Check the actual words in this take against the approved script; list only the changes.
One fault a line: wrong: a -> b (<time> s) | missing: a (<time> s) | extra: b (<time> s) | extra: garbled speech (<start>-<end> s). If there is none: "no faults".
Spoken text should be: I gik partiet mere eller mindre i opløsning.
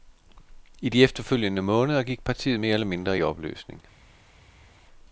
extra: de efterfølgende måneder (0.9 s)